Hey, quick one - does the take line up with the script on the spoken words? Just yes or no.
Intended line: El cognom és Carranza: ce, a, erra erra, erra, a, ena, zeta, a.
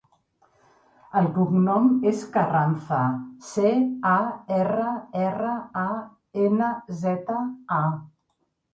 no